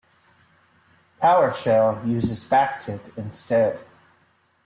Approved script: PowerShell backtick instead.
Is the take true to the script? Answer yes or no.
no